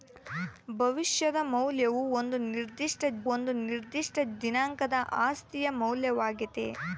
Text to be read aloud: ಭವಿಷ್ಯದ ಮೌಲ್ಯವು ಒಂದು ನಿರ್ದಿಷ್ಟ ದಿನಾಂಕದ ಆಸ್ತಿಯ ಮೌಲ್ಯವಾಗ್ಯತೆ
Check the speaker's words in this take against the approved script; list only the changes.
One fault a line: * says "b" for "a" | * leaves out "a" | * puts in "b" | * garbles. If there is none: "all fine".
* puts in "ಒಂದು ನಿರ್ದಿಷ್ಟ"